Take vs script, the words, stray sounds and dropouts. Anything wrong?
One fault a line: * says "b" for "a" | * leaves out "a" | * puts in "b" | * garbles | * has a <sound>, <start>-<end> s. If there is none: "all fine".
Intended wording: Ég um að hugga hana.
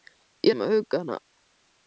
all fine